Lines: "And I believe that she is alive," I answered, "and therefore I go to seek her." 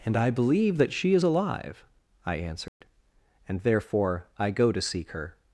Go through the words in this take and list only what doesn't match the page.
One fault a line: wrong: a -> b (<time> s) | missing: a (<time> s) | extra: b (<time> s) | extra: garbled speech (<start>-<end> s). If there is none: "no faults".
no faults